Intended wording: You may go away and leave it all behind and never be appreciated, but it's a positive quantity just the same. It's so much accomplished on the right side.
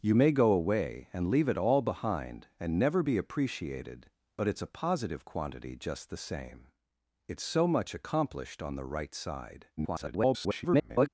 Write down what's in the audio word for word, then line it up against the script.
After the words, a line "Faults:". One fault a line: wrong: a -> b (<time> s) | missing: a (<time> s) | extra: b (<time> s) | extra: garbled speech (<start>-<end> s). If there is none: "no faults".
You may go away and leave it all behind and never be appreciated, but it's a positive quantity just the same. It's so much accomplished on the right side. [garbled]
Faults:
extra: garbled speech (9.8-11.1 s)